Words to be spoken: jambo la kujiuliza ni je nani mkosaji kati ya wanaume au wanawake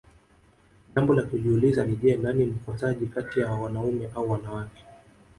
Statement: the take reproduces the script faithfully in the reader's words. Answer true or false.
true